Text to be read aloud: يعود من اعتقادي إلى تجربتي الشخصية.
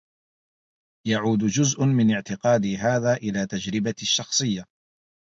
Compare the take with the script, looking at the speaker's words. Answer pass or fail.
fail